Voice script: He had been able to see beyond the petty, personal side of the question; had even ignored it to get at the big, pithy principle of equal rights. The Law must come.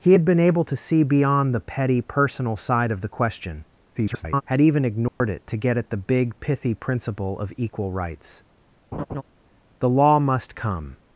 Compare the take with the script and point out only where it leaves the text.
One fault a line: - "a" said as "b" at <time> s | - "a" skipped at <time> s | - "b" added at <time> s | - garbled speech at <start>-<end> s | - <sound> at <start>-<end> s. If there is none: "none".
- garbled speech at 3.9-4.4 s
- dropout at 5.1-5.2 s
- laugh at 8.9-9.2 s